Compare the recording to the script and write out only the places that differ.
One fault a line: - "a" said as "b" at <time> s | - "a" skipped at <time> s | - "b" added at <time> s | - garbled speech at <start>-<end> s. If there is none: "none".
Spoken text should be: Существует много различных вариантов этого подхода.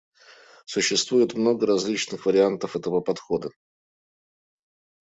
none